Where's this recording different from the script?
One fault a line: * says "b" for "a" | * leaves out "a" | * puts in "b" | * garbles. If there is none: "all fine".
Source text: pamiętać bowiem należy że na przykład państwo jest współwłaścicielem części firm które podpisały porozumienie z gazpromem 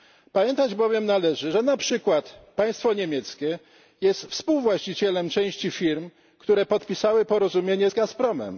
* puts in "niemieckie"